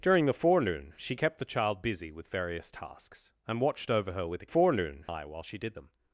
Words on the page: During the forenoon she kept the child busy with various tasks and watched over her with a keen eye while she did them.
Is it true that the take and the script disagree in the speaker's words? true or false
true